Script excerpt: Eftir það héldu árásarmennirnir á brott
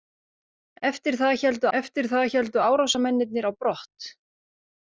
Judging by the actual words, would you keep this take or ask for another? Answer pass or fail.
fail